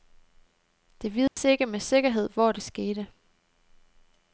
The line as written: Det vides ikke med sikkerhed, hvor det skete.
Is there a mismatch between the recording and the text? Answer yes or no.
no